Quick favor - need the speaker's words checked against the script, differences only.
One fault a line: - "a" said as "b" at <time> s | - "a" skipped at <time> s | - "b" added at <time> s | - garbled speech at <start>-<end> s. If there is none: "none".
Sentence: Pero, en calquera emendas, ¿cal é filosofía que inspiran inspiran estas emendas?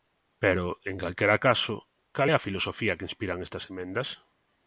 - "emendas" said as "caso" at 1.5 s
- "a" added at 2.3 s
- "inspiran" skipped at 3.4 s